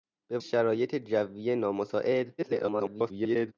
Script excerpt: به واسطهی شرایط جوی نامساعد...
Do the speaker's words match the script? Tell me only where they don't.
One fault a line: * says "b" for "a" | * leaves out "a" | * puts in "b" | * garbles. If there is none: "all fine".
* leaves out "واسطهی"
* garbles